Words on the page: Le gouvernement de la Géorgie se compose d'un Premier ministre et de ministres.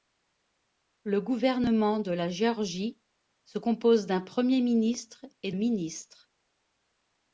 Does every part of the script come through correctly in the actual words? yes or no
no